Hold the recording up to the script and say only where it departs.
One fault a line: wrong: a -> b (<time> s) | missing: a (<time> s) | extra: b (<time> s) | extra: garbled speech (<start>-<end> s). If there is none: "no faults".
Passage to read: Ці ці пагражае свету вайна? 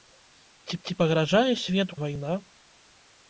no faults